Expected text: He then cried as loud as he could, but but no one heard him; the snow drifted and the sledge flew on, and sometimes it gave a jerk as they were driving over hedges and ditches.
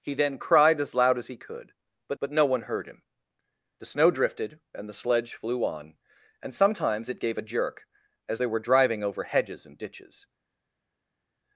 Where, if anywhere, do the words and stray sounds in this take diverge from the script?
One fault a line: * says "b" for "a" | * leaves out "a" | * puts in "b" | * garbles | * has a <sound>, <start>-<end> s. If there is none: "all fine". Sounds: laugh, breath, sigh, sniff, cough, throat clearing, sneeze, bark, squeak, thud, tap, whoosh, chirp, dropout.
all fine